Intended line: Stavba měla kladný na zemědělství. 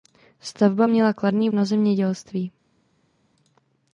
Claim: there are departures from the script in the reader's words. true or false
false